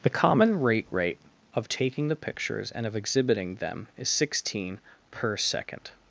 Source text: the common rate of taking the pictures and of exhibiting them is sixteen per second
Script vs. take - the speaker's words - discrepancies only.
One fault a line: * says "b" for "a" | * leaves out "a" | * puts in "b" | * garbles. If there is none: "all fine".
* puts in "rate"